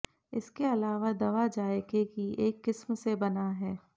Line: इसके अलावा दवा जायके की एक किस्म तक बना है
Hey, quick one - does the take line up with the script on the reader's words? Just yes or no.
no